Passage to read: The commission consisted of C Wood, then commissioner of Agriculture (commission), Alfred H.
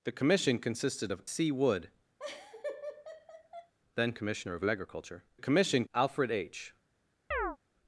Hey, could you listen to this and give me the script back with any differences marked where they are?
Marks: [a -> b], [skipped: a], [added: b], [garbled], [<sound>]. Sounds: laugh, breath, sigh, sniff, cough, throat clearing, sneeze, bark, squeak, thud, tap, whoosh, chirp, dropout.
The commission consisted of C Wood, [laugh] then commissioner of Agriculture (commission), Alfred H. [chirp]